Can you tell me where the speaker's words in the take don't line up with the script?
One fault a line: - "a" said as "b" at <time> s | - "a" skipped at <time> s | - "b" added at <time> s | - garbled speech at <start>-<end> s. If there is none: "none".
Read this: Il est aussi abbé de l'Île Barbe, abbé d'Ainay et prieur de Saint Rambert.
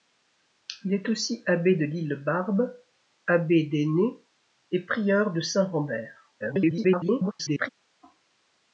- garbled speech at 6.4-7.7 s